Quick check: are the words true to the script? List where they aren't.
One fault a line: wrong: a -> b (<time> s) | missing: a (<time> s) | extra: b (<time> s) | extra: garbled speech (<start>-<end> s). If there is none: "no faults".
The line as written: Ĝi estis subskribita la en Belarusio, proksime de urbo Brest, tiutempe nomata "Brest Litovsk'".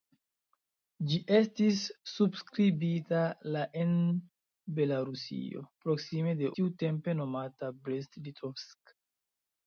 missing: urbo Brest (6.5 s)